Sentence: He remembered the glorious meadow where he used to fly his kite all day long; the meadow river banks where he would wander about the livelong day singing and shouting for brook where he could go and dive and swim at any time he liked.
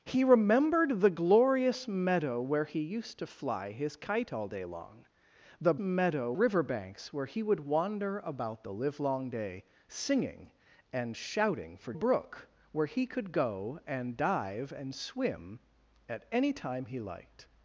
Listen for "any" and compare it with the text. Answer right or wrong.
right